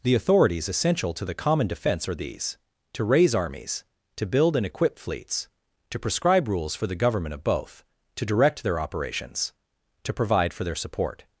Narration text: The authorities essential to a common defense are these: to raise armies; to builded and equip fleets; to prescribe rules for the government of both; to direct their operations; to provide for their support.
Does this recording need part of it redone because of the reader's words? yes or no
yes